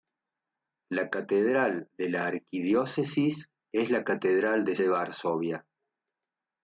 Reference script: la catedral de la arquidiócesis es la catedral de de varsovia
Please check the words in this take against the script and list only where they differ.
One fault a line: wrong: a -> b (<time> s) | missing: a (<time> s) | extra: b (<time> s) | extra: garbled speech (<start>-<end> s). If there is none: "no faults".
no faults